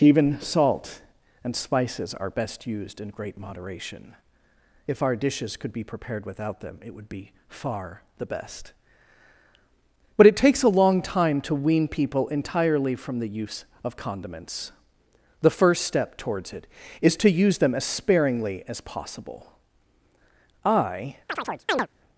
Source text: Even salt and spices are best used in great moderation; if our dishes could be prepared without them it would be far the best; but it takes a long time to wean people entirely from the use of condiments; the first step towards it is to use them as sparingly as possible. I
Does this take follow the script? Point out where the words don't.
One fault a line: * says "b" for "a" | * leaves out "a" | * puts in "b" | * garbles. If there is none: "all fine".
all fine